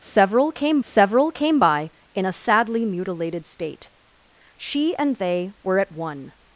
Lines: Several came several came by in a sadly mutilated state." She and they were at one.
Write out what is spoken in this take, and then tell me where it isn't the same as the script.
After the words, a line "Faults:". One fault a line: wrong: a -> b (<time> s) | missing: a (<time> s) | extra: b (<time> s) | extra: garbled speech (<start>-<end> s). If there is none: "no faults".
Several came several came by in a sadly mutilated state." She and they were at one.
Faults:
no faults